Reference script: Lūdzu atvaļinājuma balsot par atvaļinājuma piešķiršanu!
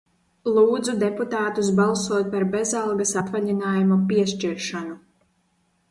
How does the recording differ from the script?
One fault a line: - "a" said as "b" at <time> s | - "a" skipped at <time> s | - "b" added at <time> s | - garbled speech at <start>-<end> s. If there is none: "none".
- "atvaļinājuma" said as "deputātus" at 1.0 s
- "bezalgas" added at 2.6 s